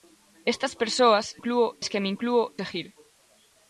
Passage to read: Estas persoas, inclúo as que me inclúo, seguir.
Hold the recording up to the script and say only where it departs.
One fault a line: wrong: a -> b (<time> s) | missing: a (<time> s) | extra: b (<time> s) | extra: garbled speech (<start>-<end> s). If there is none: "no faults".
no faults